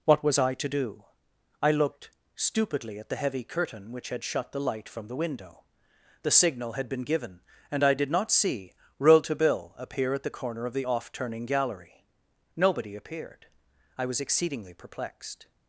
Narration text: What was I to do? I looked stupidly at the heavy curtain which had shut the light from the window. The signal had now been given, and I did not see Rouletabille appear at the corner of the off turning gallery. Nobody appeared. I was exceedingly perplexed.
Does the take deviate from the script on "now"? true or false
true